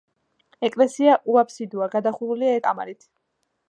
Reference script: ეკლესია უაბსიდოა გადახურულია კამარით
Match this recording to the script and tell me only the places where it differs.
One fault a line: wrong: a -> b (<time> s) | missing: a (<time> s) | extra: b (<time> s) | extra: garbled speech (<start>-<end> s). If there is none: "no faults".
no faults